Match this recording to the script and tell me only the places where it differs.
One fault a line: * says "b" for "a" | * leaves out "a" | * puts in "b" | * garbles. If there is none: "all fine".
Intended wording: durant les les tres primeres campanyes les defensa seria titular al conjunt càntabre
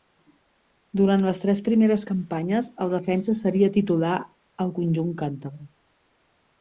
* leaves out "les"
* says "el" for "les"